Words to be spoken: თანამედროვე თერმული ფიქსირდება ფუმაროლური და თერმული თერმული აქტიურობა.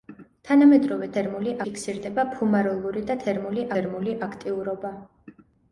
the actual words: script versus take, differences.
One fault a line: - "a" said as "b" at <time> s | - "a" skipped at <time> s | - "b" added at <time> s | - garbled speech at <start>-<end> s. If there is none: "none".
none